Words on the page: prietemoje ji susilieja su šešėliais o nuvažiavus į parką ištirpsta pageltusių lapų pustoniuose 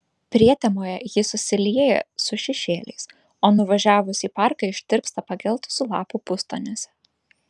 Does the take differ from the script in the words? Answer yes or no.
no